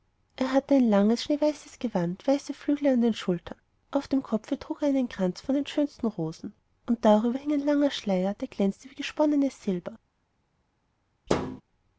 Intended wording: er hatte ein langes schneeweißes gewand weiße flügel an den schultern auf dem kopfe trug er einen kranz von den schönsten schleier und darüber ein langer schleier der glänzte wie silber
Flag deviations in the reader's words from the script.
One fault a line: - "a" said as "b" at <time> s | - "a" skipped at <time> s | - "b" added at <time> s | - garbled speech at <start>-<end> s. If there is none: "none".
- "schleier" said as "rosen" at 6.1 s
- "hing" added at 7.4 s
- "gesponnenes" added at 8.9 s